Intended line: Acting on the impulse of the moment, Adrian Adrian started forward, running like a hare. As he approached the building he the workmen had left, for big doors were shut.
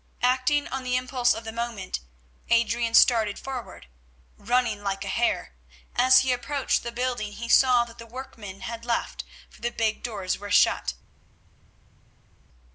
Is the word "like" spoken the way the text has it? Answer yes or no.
yes